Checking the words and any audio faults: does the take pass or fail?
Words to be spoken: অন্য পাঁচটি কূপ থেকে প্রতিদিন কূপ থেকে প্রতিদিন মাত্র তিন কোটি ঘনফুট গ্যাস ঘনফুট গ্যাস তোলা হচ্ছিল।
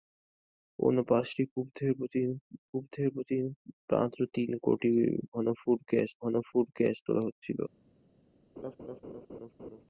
fail